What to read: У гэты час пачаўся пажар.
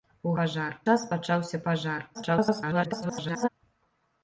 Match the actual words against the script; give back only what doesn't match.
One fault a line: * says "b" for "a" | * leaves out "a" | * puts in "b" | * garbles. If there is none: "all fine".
* says "пажар" for "гэты"
* garbles